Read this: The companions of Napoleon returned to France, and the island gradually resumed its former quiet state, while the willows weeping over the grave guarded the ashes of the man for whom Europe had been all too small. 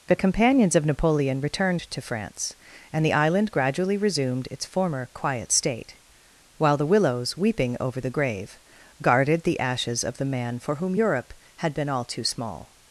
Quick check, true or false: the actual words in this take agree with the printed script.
true